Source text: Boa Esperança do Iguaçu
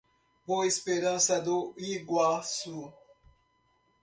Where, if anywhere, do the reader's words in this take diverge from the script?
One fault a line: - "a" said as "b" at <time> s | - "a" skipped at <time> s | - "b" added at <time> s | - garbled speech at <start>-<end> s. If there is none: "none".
none